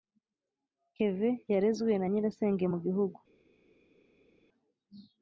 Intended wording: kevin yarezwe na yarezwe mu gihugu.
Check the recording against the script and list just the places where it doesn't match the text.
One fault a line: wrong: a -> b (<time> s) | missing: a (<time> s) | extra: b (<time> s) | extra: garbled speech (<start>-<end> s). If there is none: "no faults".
wrong: yarezwe -> nyirasenge (2.1 s)